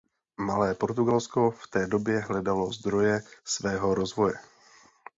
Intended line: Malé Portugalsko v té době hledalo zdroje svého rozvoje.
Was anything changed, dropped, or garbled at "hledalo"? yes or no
no